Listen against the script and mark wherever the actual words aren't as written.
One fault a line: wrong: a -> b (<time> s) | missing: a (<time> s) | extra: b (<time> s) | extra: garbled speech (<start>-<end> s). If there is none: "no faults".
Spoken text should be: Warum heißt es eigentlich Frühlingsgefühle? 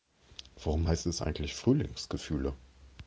no faults